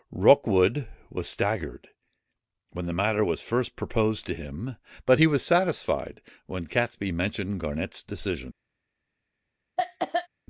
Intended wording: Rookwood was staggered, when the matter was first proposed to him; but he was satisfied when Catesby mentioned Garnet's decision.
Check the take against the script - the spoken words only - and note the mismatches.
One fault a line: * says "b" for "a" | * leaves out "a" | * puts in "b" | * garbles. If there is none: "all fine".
all fine